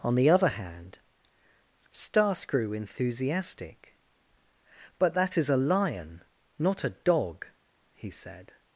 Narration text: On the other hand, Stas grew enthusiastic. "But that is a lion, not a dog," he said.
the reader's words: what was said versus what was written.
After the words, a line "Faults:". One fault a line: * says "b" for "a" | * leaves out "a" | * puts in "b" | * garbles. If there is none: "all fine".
On the other hand, Stas grew enthusiastic. "But that is a lion, not a dog," he said.
Faults:
all fine